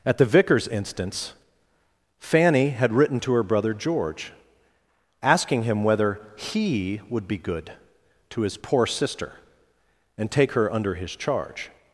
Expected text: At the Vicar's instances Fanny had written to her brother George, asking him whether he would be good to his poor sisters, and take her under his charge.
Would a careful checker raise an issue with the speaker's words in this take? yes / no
yes